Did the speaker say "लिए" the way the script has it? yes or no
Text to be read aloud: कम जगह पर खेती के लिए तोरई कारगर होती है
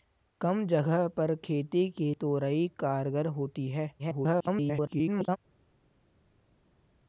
no